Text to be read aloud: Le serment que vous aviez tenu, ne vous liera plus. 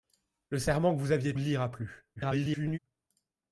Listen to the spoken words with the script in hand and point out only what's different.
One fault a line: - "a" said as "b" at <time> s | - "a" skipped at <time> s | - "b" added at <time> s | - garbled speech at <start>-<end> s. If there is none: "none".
- "tenu ne vous" skipped at 1.4 s
- garbled speech at 2.2-2.8 s